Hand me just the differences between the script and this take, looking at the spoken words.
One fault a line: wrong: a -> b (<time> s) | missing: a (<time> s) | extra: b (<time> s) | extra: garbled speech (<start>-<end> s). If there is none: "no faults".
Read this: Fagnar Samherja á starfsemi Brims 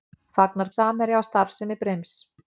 no faults